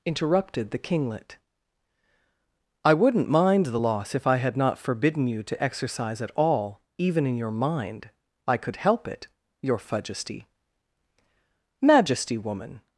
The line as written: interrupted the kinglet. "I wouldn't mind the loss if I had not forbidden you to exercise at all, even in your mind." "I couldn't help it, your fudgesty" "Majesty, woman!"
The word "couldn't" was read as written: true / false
false